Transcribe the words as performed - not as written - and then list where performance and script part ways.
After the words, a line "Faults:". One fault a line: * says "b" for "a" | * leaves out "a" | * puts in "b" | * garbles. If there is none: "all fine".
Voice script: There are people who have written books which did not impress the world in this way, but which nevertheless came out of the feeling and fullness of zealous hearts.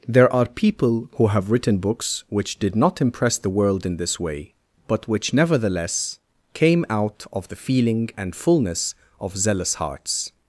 There are people who have written books which did not impress the world in this way, but which nevertheless came out of the feeling and fullness of zealous hearts.
Faults:
all fine